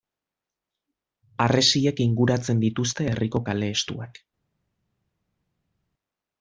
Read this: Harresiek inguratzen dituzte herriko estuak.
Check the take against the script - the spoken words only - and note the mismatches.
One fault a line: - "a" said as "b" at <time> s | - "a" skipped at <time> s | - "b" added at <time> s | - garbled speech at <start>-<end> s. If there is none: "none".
- "kale" added at 3.5 s